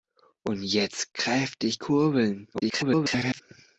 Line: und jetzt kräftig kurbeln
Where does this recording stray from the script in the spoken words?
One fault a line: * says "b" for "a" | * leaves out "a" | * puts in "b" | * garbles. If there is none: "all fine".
* garbles